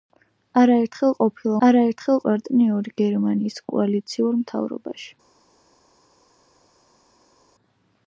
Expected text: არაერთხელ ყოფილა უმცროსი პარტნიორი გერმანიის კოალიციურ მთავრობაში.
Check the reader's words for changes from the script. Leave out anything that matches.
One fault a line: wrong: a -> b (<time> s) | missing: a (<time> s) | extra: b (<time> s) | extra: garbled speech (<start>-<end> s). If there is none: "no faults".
wrong: უმცროსი -> არაერთხელ (1.7 s)